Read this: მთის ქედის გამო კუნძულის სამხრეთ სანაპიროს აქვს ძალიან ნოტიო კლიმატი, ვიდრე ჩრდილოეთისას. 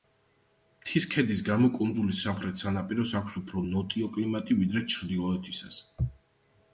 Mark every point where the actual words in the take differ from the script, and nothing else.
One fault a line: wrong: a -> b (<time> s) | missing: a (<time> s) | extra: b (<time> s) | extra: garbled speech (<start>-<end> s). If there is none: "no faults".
wrong: ძალიან -> უფრო (3.4 s)